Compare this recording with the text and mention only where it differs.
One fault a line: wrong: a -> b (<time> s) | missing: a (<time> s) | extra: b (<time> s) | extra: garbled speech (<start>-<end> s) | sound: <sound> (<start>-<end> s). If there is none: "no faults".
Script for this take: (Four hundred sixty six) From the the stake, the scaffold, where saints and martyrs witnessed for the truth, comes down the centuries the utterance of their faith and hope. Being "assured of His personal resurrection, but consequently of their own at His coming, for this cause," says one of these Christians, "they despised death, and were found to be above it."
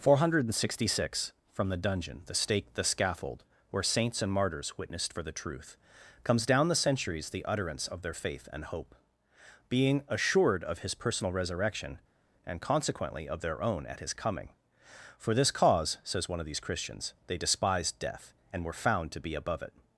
extra: dungeon (1.8 s)
wrong: but -> and (12.4 s)